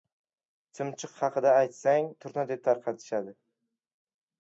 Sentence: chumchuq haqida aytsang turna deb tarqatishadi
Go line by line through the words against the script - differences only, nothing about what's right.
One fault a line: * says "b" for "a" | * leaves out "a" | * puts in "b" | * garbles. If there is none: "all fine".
all fine